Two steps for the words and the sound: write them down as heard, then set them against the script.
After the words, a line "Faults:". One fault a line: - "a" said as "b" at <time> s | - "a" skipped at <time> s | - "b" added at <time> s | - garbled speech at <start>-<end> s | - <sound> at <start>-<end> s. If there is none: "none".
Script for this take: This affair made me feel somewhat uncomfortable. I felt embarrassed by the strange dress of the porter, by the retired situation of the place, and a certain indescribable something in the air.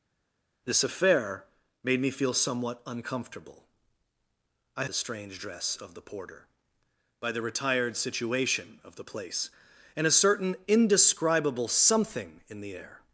This affair made me feel somewhat uncomfortable. I the strange dress of the porter, by the retired situation of the place, and a certain indescribable something in the air.
Faults:
- "felt embarrassed by" skipped at 4.8 s